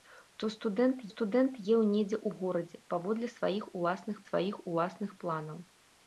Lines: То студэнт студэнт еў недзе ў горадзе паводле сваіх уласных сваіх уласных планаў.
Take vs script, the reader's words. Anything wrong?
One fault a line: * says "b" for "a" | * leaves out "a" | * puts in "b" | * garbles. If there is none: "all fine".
all fine